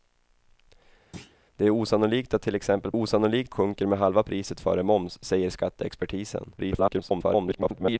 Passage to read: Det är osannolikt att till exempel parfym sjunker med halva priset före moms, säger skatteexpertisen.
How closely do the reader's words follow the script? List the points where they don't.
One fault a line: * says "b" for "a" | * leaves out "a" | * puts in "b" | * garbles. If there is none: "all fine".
* says "osannolikt" for "parfym"
* garbles